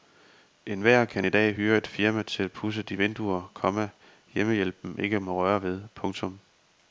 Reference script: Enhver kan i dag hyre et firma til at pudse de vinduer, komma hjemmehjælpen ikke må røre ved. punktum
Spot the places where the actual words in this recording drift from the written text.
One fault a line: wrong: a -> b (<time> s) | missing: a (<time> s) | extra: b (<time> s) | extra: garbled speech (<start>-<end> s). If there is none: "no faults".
no faults